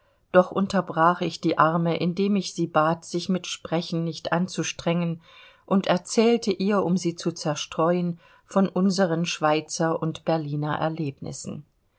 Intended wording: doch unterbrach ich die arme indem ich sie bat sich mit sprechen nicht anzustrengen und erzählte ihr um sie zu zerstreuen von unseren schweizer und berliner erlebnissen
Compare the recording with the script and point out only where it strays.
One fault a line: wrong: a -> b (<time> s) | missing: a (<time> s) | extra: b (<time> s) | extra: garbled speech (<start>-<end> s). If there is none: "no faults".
no faults